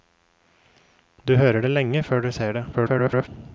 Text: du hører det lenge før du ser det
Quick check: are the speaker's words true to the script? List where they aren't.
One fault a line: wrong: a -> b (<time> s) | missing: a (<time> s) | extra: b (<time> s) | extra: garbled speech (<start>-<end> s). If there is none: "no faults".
extra: garbled speech (2.7-3.3 s)